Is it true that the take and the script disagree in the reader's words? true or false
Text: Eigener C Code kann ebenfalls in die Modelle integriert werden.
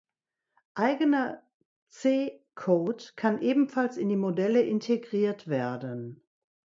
false